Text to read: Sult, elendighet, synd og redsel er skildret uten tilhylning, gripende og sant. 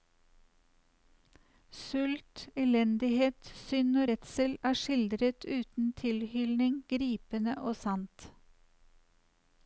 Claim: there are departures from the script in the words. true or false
false